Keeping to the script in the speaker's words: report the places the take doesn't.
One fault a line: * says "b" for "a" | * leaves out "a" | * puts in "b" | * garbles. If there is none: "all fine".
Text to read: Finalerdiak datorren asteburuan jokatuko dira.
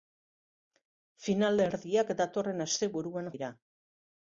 * leaves out "jokatuko"